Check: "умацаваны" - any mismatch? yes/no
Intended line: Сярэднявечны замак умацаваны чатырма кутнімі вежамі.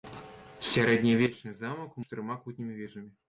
yes